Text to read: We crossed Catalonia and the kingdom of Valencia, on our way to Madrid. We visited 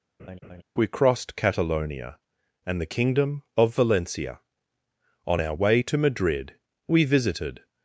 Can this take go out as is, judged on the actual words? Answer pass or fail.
pass